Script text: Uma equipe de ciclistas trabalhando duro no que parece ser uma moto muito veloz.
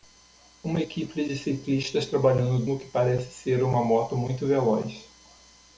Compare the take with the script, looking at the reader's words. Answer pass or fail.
fail